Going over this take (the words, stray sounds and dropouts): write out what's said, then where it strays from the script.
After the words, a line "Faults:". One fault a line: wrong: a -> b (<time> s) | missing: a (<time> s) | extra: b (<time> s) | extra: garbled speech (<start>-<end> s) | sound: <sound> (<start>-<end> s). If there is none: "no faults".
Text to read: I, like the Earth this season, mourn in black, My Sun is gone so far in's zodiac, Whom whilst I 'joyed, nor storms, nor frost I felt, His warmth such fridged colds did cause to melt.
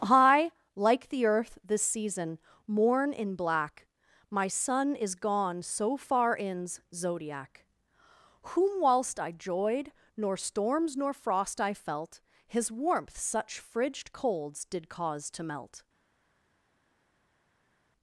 I, like the Earth this season, mourn in black, My Sun is gone so far in's zodiac, Whom whilst I 'joyed, nor storms, nor frost I felt, His warmth such fridged colds did cause to melt.
Faults:
no faults